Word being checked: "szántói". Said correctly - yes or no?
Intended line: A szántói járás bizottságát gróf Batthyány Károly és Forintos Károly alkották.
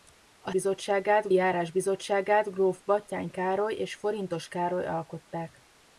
no